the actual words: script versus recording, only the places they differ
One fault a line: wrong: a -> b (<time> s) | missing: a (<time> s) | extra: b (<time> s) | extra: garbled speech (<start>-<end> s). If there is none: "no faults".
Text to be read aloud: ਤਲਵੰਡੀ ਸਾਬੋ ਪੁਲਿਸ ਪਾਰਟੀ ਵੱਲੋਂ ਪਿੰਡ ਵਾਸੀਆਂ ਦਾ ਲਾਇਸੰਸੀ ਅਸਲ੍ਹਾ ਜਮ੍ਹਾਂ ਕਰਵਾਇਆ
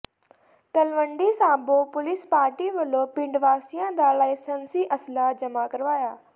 no faults